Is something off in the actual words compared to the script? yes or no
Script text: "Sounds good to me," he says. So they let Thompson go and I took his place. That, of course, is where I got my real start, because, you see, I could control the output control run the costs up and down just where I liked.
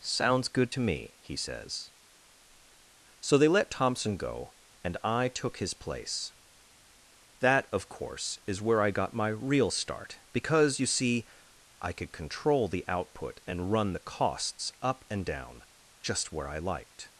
yes